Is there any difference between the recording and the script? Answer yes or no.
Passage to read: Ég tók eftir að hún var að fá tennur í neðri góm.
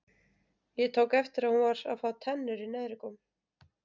no